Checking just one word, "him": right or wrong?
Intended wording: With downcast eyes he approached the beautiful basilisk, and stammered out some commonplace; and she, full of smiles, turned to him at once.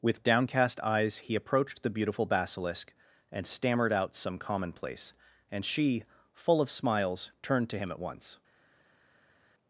right